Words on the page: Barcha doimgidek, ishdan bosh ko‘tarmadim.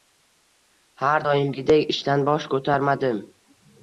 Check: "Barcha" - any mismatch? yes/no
yes